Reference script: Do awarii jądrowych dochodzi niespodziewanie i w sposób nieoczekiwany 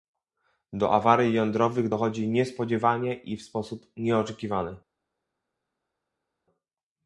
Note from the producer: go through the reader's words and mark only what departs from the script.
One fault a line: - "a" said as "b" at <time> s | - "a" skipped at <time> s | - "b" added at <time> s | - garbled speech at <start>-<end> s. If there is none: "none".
none